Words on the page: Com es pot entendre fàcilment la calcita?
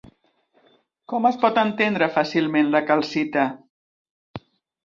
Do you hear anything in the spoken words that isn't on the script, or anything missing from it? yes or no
no